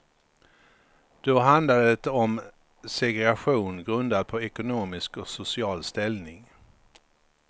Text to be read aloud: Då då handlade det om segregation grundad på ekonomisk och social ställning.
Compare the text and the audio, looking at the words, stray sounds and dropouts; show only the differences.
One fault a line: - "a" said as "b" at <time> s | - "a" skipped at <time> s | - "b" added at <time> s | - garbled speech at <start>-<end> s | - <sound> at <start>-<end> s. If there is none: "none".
- "då" skipped at 1.4 s